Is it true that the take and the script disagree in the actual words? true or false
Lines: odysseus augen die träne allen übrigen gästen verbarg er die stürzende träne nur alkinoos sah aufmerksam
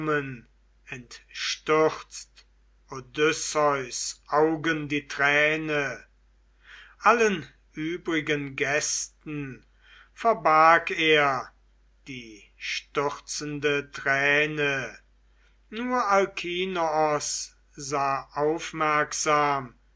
false